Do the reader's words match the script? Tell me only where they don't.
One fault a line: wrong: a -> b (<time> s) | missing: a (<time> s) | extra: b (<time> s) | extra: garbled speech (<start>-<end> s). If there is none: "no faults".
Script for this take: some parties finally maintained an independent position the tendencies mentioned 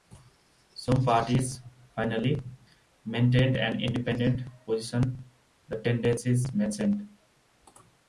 no faults